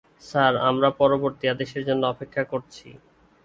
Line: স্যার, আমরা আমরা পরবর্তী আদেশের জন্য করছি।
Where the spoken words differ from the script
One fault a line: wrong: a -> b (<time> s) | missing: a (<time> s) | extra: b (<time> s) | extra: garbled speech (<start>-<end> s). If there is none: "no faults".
missing: আমরা (0.9 s)
extra: অপেক্ষা (2.1 s)